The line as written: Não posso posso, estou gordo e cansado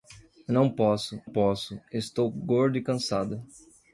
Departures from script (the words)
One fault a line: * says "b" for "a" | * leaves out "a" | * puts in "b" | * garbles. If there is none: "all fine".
all fine